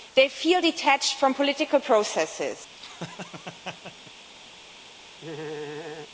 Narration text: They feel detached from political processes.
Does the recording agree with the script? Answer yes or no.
yes